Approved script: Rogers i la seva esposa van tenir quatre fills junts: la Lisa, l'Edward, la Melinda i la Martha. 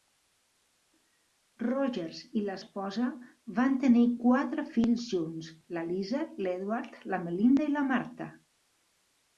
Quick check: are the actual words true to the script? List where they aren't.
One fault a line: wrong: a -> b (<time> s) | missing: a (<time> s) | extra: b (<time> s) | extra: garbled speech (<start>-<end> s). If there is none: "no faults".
missing: seva (2.5 s)